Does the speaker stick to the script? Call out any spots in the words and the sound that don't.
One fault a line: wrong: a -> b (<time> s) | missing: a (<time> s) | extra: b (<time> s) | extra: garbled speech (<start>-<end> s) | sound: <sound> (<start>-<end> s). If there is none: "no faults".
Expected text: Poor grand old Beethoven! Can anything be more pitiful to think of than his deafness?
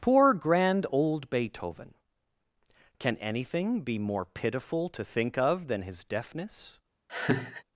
sound: laugh (7.1-7.6 s)